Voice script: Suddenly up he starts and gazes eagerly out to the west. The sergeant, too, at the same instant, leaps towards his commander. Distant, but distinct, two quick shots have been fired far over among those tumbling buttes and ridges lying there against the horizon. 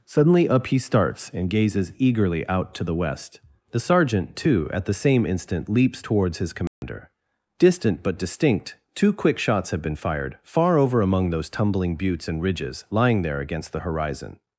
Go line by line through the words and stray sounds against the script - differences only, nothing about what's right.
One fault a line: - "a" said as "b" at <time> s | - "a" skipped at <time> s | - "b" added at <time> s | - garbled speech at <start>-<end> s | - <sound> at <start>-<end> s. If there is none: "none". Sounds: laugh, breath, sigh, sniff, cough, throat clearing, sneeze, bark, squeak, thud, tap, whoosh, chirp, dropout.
- dropout at 6.7-6.8 s